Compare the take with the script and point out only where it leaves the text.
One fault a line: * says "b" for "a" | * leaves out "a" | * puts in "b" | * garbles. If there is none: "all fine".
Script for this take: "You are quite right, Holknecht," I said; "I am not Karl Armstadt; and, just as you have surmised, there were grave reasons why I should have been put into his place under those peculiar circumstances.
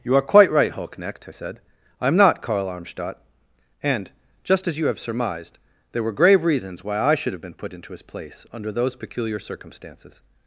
all fine